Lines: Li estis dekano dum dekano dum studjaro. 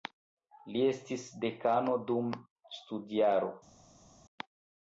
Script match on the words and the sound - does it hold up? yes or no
no